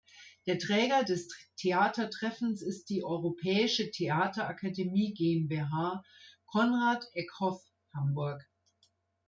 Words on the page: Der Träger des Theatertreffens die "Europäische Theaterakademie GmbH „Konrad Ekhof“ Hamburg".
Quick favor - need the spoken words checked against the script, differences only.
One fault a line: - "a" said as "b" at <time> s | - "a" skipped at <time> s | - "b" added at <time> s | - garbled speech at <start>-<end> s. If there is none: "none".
- "ist" added at 2.6 s